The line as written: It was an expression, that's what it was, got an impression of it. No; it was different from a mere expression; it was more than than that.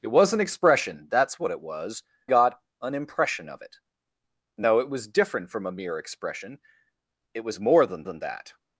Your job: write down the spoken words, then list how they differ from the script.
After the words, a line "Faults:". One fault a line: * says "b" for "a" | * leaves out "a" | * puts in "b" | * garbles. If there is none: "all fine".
It was an expression, that's what it was, got an impression of it. No; it was different from a mere expression; it was more than than that.
Faults:
all fine